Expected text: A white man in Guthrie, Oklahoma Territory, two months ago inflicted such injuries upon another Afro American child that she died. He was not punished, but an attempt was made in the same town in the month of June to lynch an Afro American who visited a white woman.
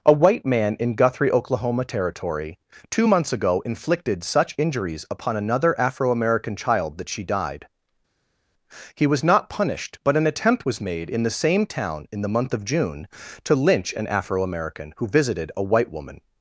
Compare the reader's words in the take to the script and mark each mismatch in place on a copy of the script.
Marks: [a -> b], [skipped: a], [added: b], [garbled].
A white man in Guthrie, Oklahoma Territory, two months ago inflicted such injuries upon another Afro American child that she died. He was not punished, but an attempt was made in the same town in the month of June to lynch an Afro American who visited a white woman.